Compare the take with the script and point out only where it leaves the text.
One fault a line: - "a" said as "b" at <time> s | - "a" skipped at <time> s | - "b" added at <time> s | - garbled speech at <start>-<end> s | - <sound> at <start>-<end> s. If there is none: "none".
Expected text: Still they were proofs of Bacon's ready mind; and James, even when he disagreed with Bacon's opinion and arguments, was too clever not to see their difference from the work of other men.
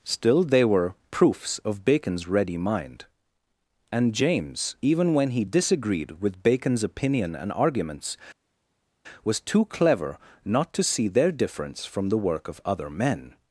none